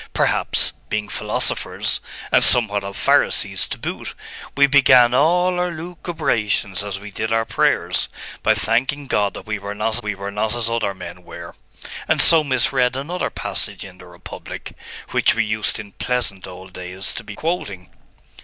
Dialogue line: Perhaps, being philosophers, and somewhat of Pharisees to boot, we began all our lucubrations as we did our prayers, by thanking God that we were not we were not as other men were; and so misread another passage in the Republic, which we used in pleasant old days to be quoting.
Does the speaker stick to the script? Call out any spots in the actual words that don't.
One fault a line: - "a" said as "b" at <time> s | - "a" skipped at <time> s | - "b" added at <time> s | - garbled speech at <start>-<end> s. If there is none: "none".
none